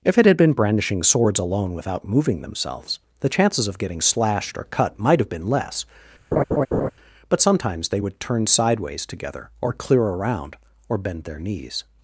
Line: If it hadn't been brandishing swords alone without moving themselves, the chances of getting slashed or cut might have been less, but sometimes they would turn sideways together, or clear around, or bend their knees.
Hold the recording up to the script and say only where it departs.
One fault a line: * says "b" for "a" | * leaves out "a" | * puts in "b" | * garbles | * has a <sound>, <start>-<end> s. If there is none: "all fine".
* says "had" for "hadn't"
* has a laugh, 6.3-6.9 s